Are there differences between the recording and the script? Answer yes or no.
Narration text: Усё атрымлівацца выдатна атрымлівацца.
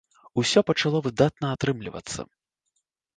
yes